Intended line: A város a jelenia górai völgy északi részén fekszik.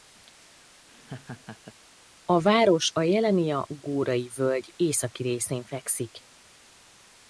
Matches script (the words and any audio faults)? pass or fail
fail